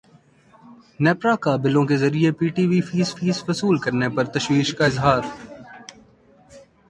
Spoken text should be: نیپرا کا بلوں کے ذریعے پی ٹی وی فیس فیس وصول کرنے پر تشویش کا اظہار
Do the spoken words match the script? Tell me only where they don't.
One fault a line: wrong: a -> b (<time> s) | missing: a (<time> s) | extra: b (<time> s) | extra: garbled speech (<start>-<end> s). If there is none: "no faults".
no faults